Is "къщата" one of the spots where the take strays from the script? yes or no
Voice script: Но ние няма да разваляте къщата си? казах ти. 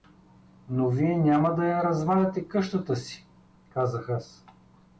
no